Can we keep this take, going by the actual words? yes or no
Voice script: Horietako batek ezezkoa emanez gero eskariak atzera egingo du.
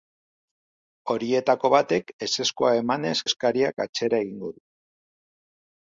no